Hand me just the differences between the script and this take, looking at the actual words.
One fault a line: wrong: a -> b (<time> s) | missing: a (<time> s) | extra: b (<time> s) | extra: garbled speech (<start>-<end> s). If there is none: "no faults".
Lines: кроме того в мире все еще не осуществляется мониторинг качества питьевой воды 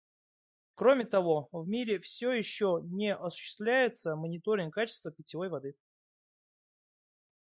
no faults